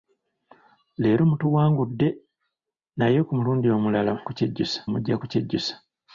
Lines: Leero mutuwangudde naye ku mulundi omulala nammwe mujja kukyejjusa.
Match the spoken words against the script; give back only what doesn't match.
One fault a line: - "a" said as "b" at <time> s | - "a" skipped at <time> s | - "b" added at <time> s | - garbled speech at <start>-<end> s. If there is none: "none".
- "nammwe" said as "kukyejjusa" at 4.3 s